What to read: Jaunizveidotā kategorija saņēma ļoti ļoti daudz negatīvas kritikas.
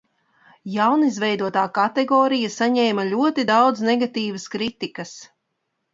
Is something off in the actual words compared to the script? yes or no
yes